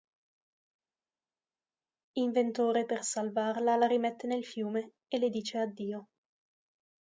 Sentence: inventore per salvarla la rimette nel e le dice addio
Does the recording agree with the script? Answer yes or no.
no